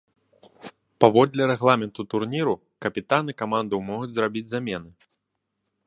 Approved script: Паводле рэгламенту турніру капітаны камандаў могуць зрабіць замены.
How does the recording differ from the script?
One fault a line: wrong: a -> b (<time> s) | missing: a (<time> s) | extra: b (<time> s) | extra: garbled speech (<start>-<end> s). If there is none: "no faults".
no faults